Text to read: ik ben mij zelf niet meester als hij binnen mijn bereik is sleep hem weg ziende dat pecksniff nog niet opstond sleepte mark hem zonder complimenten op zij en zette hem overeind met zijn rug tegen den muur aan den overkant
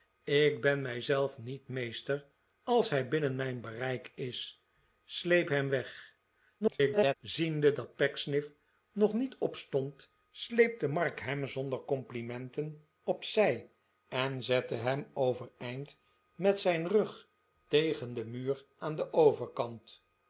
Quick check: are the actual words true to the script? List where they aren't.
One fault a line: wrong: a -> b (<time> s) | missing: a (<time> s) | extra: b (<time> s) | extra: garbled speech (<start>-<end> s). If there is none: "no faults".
extra: garbled speech (6.6-7.1 s)